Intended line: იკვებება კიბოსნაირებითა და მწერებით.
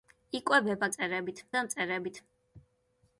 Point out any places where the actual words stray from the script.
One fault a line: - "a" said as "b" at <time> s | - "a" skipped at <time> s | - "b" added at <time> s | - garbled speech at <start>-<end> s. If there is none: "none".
- "კიბოსნაირებითა" said as "მწერებით" at 0.9 s